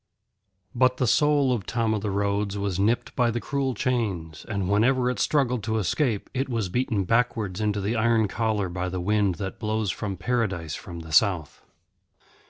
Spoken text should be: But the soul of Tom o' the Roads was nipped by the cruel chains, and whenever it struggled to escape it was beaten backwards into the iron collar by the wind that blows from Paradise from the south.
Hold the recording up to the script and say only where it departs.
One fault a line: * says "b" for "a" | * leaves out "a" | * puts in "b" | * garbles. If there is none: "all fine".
all fine